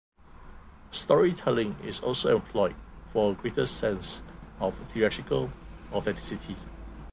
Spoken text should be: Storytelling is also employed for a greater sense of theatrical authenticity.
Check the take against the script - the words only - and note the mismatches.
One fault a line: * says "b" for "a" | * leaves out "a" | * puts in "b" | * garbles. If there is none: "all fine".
all fine